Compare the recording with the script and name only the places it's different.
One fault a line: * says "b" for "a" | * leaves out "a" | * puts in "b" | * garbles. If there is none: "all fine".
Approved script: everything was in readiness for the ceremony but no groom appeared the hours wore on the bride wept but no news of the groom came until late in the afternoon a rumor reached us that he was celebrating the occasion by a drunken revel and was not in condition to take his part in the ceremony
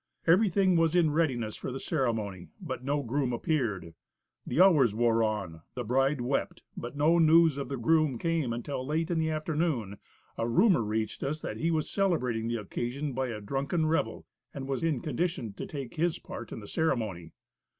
* leaves out "not"